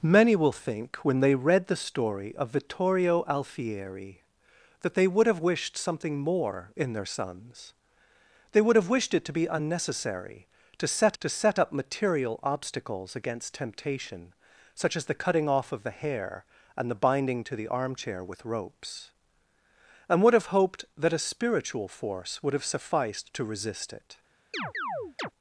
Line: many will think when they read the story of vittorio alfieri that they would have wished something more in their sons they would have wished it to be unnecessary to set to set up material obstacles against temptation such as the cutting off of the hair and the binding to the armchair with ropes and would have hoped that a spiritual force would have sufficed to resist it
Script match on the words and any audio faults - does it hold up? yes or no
no